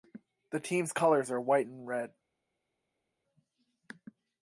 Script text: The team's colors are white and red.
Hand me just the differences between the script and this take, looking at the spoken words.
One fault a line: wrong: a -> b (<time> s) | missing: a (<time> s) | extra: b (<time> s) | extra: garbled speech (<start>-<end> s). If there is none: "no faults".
no faults